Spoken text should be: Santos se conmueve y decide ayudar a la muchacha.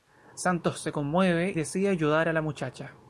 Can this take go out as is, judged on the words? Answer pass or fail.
fail